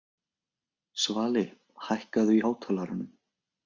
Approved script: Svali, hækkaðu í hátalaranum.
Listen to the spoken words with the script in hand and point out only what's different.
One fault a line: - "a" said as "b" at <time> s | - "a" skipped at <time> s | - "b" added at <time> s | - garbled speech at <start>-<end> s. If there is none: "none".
none